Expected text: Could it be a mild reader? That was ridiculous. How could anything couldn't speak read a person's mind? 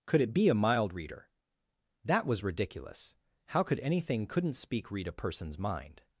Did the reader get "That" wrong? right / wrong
right